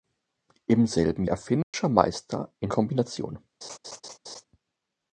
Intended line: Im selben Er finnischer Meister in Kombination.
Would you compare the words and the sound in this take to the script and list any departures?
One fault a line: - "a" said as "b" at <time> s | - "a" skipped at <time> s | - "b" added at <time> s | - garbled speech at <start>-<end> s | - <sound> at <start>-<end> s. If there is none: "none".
- dropout at 1.6-1.7 s
- laugh at 3.6-4.4 s